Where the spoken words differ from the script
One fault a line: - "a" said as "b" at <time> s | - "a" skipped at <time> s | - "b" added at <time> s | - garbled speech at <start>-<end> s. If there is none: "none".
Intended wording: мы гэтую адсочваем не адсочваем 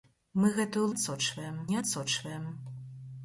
none